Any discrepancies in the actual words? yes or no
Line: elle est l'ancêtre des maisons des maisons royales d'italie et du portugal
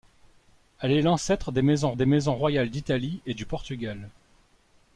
no